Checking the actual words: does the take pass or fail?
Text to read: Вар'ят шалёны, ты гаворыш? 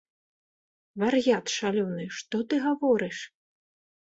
fail